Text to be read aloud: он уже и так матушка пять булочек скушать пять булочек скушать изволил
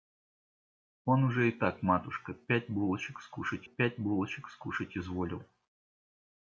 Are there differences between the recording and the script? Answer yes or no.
no